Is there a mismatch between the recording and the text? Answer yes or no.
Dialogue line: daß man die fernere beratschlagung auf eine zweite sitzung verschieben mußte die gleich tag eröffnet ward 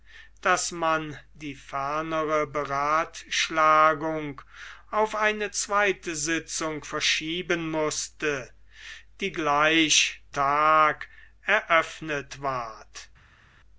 no